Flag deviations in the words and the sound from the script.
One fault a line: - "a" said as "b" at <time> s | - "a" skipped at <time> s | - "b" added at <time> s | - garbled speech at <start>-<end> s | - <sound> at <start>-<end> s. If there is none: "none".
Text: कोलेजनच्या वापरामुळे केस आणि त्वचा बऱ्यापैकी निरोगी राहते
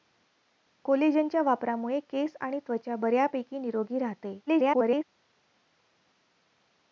- garbled speech at 4.5-5.0 s